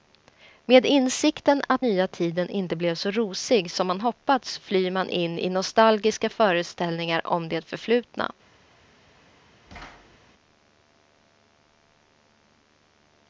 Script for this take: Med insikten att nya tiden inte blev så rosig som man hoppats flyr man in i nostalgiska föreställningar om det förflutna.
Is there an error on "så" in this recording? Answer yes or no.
no